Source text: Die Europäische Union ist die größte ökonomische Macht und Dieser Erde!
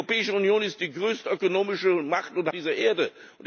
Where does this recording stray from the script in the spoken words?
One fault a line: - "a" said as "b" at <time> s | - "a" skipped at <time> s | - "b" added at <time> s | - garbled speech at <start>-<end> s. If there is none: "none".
none